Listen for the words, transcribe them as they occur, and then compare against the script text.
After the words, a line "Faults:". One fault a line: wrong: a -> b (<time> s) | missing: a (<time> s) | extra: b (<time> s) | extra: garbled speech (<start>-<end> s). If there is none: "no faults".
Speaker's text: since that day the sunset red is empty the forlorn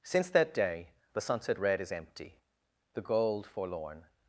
since that day the sunset red is empty the gold forlorn
Faults:
extra: gold (3.0 s)